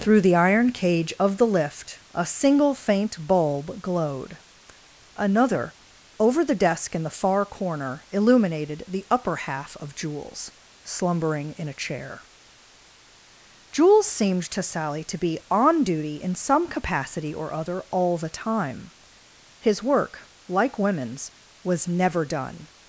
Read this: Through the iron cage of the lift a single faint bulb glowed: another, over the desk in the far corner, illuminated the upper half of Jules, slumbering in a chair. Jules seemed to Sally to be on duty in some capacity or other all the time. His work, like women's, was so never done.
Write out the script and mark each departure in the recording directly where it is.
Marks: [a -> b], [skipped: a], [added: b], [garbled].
Through the iron cage of the lift a single faint bulb glowed: another, over the desk in the far corner, illuminated the upper half of Jules, slumbering in a chair. Jules seemed to Sally to be on duty in some capacity or other all the time. His work, like women's, was [skipped: so] never done.